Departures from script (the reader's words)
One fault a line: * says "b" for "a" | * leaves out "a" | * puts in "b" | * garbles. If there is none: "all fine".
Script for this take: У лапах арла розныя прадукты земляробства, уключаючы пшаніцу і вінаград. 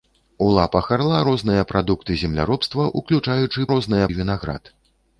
* says "розныя" for "пшаніцу"